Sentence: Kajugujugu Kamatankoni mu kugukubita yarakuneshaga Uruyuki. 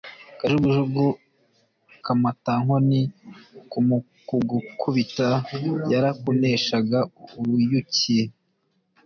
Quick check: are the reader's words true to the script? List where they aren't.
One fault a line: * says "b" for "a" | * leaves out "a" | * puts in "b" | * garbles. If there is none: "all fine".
all fine